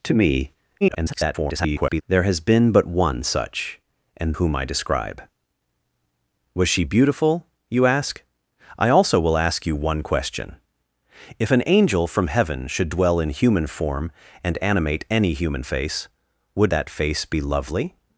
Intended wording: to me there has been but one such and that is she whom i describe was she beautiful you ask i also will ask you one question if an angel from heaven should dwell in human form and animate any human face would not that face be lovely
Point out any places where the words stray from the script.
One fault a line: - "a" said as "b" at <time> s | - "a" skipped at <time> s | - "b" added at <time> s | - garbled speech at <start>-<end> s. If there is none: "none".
- garbled speech at 0.8-2.0 s
- "that is she" skipped at 4.3 s
- "not" skipped at 16.7 s